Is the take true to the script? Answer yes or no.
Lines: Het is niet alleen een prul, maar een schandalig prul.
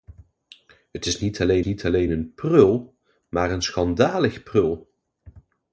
no